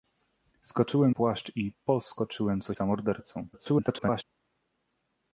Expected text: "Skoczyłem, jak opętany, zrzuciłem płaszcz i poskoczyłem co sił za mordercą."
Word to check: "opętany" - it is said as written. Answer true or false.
false